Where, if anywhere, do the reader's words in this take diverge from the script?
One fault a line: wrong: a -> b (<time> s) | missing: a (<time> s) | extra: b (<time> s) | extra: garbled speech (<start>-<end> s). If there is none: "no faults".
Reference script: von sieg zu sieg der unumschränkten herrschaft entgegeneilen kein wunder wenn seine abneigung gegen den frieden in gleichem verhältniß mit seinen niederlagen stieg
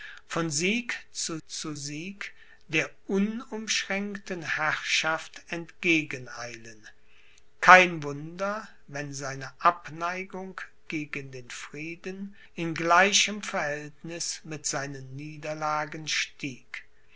extra: zu (1.5 s)